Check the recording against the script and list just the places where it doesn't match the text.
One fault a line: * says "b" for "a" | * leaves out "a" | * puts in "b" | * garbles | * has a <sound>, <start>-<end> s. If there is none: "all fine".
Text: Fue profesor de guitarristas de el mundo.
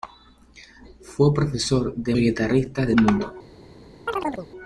* has a chirp, 4.1-4.5 s